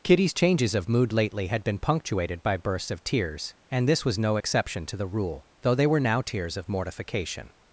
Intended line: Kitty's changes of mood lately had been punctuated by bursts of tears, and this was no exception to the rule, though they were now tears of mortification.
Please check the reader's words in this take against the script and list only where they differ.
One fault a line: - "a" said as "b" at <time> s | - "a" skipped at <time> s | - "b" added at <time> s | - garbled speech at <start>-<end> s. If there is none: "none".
none